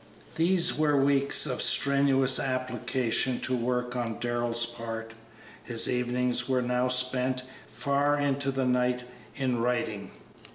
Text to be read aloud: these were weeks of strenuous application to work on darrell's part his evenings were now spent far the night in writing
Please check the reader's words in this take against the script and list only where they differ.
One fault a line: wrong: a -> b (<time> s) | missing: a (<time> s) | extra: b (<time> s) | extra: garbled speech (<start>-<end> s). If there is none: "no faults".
extra: into (8.2 s)